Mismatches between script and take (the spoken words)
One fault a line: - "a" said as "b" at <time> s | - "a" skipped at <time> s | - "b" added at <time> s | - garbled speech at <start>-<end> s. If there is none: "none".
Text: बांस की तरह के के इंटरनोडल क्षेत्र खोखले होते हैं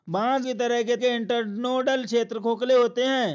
none